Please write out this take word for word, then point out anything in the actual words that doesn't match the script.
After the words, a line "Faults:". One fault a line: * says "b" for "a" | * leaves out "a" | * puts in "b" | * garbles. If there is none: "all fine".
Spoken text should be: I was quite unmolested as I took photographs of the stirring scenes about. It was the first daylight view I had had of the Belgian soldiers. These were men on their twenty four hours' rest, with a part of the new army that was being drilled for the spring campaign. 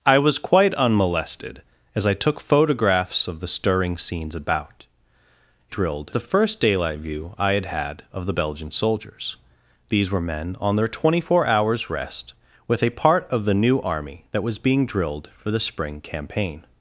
I was quite unmolested as I took photographs of the stirring scenes about. It drilled the first daylight view I had had of the Belgian soldiers. These were men on their twenty four hours' rest, with a part of the new army that was being drilled for the spring campaign.
Faults:
* says "drilled" for "was"